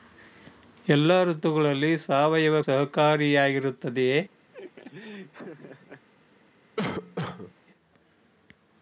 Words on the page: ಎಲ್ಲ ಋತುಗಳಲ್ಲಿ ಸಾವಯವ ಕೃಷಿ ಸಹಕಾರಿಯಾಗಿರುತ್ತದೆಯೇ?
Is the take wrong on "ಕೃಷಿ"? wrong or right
wrong